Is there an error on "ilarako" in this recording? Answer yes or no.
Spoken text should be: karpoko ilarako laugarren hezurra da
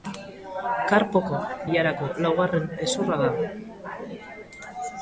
no